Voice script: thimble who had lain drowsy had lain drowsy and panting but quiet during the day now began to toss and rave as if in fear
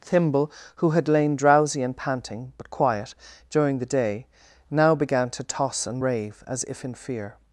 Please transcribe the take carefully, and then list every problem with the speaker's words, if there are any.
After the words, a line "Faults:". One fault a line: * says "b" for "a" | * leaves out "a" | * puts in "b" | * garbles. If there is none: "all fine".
thimble who had lain drowsy and panting but quiet during the day now began to toss and rave as if in fear
Faults:
* leaves out "had lain drowsy"